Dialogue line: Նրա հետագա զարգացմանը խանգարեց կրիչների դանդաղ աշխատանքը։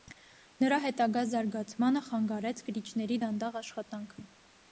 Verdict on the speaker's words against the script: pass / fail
pass